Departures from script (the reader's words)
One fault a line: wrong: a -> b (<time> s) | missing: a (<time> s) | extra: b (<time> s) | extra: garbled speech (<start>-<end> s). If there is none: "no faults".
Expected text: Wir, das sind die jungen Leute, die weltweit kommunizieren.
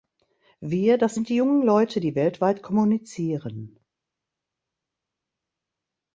no faults